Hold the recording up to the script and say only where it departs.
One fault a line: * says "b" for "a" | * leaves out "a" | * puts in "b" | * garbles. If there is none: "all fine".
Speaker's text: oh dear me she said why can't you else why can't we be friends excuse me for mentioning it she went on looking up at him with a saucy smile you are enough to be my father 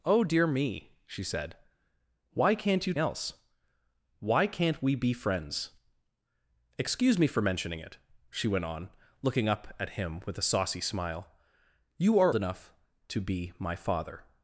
all fine